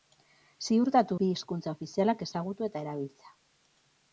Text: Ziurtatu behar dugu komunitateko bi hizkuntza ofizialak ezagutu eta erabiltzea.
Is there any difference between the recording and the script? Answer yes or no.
yes